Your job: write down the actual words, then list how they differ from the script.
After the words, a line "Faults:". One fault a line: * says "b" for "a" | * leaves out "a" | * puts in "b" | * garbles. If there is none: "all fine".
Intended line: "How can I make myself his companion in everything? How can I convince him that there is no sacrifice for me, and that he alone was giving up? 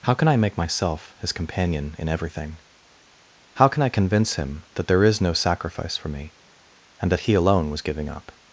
"How can I make myself his companion in everything? How can I convince him that there is no sacrifice for me, and that he alone was giving up?
Faults:
all fine